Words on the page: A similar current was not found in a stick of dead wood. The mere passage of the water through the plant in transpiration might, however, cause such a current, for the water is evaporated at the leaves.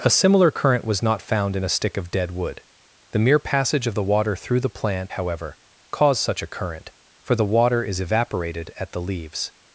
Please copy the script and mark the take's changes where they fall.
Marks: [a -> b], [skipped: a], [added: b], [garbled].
A similar current was not found in a stick of dead wood. The mere passage of the water through the plant [skipped: in transpiration might,] however, cause such a current, for the water is evaporated at the leaves.